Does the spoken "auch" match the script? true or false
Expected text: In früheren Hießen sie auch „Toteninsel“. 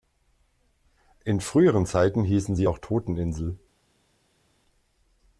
true